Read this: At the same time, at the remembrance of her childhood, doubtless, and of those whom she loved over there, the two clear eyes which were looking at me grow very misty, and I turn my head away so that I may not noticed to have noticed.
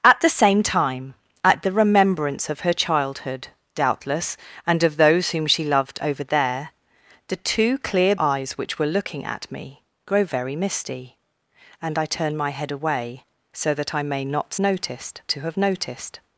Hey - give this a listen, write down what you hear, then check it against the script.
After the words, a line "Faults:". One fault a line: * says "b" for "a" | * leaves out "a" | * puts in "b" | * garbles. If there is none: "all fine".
At the same time, at the remembrance of her childhood, doubtless, and of those whom she loved over there, the two clear eyes which were looking at me grow very misty, and I turn my head away so that I may not noticed to have noticed.
Faults:
all fine